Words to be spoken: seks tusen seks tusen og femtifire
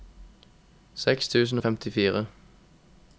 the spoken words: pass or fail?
fail